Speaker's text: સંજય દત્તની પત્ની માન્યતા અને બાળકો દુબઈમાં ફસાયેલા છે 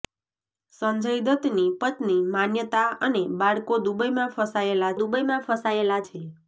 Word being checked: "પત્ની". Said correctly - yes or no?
yes